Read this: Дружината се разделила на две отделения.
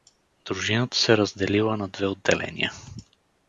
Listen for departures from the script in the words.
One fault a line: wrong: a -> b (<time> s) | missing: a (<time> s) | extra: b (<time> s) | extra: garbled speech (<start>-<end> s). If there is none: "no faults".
no faults